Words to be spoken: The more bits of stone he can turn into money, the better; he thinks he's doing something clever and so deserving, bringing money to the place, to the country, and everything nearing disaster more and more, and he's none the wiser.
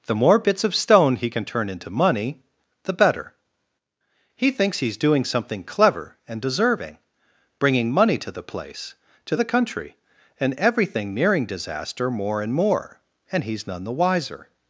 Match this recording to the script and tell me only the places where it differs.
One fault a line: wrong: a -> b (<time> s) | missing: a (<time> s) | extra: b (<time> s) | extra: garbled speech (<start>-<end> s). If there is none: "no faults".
missing: so (6.4 s)